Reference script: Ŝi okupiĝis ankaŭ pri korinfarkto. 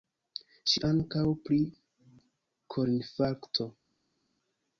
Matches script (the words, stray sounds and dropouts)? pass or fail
fail